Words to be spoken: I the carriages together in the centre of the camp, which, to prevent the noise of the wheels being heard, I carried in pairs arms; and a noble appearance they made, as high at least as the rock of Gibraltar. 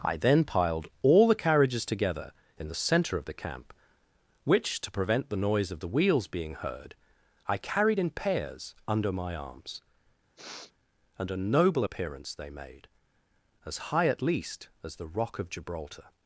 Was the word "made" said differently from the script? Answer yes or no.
no